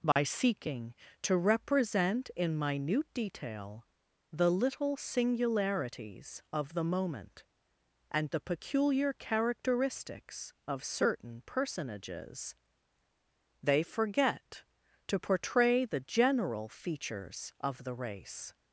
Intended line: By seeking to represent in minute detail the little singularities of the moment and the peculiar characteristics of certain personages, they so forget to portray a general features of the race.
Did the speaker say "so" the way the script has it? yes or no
no